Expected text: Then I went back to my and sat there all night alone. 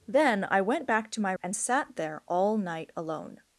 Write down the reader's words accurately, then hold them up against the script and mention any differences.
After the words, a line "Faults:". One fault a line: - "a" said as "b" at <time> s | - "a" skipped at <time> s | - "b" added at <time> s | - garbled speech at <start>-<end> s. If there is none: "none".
Then I went back to my and sat there all night alone.
Faults:
none